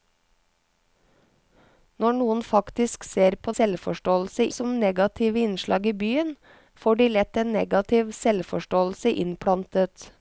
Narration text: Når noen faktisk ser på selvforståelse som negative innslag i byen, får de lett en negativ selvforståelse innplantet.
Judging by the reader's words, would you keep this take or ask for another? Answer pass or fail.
pass